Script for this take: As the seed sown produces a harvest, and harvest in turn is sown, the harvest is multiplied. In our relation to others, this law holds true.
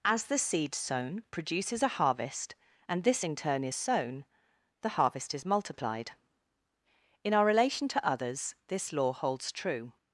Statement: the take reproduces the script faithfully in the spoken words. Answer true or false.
false